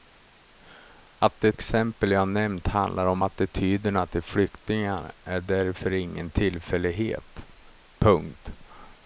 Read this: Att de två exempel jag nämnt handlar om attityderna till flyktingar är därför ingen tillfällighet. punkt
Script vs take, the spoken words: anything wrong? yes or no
yes